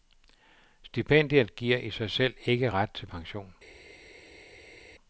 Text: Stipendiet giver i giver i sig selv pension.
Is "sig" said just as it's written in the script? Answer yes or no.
no